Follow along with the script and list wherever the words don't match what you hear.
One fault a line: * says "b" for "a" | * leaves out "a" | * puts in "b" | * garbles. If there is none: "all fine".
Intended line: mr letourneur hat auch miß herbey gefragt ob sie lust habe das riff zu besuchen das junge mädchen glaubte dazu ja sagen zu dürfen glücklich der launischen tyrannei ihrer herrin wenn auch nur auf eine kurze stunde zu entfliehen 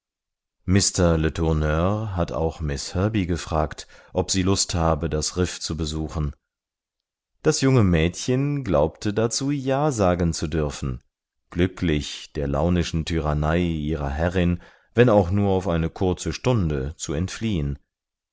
all fine